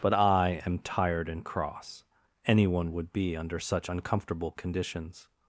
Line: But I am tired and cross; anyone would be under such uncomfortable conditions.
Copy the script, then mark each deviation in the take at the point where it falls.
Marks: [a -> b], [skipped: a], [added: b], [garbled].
But I am tired and cross; anyone would be under such uncomfortable conditions.